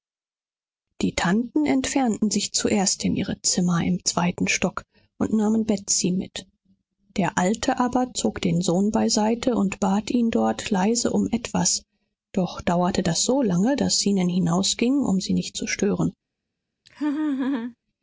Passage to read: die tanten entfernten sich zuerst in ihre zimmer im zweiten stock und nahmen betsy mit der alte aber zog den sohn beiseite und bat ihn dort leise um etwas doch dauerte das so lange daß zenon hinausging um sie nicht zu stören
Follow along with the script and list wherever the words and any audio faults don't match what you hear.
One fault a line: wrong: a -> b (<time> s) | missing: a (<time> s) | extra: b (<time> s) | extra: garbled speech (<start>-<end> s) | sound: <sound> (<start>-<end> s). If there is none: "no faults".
sound: laugh (16.9-17.8 s)